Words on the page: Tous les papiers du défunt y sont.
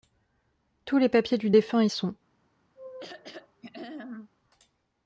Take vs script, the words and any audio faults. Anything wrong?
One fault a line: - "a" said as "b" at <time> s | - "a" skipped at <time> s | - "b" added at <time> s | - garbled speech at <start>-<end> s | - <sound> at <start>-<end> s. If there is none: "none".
- throat clearing at 2.8-4.3 s